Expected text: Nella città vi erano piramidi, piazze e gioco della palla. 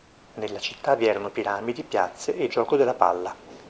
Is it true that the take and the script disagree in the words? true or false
false